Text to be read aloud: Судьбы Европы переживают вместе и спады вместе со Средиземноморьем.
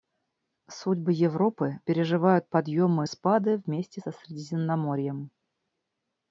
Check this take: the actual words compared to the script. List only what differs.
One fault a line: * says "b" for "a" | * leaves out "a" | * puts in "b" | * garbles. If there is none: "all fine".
* says "подъемы" for "вместе"